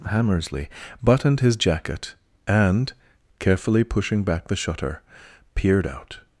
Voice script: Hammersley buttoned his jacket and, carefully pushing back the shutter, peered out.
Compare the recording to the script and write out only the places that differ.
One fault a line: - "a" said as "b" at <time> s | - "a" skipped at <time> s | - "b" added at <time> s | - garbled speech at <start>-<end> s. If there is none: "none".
none